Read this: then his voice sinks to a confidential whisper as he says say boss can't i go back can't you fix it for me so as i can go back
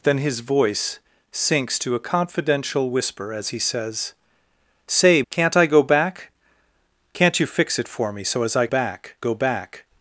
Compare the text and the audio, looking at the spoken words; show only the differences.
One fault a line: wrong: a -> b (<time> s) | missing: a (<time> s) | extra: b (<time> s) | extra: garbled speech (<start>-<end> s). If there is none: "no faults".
missing: boss (5.2 s)
wrong: can -> back (8.7 s)